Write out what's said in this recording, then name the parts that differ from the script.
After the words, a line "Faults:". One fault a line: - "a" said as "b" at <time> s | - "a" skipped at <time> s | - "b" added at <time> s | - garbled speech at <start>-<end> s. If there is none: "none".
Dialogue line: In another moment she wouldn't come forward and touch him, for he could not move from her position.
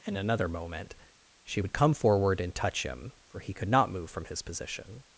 In another moment she would come forward and touch him, for he could not move from his position.
Faults:
- "wouldn't" said as "would" at 1.6 s
- "her" said as "his" at 4.3 s